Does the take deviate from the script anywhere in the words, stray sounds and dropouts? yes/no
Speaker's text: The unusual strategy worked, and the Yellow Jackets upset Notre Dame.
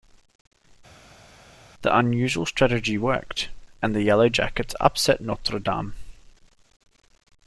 no